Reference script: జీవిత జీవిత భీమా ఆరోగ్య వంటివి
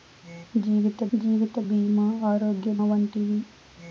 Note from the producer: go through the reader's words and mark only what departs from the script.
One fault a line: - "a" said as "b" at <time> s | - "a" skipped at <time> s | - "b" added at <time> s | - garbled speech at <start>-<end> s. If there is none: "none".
none